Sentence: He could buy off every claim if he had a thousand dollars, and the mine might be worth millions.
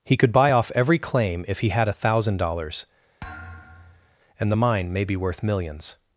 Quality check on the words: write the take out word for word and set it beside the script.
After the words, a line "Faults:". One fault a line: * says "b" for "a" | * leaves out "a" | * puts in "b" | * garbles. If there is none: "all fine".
He could buy off every claim if he had a thousand dollars, and the mine may be worth millions.
Faults:
* says "may" for "might"